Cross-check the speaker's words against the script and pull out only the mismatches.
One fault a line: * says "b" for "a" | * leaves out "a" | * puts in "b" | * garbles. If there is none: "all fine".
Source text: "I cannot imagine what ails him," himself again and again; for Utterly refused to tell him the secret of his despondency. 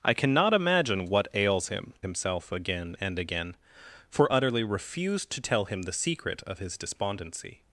all fine